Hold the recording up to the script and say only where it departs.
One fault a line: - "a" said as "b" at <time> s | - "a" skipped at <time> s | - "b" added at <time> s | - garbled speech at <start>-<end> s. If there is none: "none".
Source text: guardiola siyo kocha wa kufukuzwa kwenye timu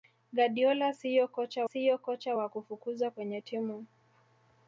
- "siyo kocha" added at 1.6 s